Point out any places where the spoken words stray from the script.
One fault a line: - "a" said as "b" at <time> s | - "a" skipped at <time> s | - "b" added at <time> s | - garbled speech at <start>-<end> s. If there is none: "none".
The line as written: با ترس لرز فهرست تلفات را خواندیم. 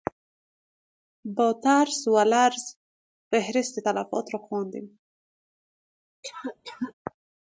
- "و" added at 2.1 s